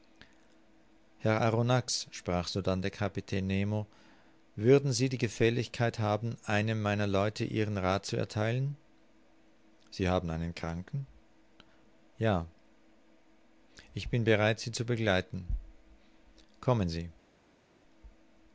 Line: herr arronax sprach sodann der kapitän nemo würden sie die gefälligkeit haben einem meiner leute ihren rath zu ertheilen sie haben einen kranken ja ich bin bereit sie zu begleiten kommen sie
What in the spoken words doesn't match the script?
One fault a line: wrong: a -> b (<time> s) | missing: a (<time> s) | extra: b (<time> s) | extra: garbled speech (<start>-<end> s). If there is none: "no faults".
no faults